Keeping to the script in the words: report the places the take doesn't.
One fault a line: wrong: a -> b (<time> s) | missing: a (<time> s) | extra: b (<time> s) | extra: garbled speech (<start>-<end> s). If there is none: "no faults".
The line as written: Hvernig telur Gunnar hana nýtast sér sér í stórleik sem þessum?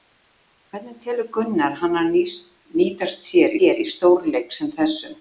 no faults